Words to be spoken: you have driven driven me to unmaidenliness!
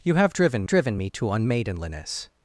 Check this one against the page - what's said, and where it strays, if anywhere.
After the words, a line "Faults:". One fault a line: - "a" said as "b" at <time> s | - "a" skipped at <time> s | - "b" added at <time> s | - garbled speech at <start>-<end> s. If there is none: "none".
you have driven driven me to unmaidenliness!
Faults:
none